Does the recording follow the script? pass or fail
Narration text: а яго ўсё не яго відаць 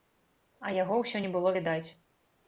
fail